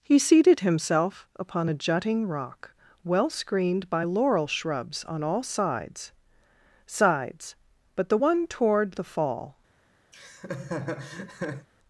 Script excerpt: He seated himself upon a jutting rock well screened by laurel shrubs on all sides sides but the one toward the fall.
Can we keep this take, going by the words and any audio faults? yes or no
no